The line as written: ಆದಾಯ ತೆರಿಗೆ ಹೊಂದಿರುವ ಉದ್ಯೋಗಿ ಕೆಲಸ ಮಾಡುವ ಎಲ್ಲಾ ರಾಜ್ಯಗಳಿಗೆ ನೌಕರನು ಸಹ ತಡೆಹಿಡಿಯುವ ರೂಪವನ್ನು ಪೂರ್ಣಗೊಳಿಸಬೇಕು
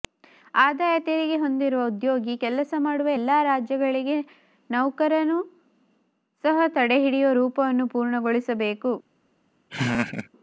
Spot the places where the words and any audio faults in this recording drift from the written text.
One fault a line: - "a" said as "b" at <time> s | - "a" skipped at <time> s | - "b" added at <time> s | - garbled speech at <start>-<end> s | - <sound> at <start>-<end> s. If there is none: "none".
- laugh at 9.7-10.3 s